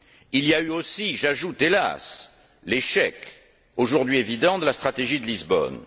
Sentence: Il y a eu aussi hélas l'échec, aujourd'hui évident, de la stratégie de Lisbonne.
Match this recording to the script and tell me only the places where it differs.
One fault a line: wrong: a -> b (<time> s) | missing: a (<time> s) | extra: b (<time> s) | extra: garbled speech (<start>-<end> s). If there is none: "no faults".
extra: j'ajoute (1.2 s)